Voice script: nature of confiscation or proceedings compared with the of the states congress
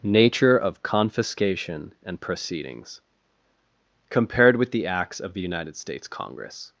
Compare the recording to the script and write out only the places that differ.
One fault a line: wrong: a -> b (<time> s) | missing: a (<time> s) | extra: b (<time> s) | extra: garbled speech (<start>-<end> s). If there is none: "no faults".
wrong: or -> and (2.0 s)
extra: acts (4.9 s)
extra: united (5.4 s)